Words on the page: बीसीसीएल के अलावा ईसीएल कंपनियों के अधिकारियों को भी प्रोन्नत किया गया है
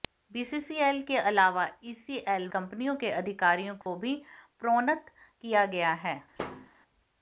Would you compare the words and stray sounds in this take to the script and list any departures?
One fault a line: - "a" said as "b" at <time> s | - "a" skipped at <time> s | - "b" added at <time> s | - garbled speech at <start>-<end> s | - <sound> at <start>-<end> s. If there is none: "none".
- dropout at 3.8-3.9 s
- thud at 6.4-6.7 s